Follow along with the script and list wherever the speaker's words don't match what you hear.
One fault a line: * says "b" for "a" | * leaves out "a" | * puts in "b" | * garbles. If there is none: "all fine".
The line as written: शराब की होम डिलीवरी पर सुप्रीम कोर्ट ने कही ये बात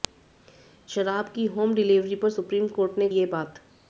* leaves out "कही"